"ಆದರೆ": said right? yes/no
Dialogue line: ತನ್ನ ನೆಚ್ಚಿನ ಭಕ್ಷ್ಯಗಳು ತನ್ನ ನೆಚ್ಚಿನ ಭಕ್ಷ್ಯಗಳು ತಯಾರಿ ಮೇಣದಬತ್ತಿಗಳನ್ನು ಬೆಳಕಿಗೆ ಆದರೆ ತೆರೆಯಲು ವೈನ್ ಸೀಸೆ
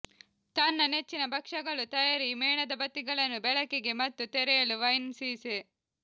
no